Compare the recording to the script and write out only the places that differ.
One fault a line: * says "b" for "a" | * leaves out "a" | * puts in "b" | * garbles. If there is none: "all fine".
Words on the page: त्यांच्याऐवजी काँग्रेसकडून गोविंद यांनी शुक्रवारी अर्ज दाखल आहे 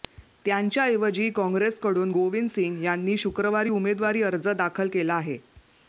* puts in "सिंग"
* puts in "उमेदवारी"
* puts in "केला"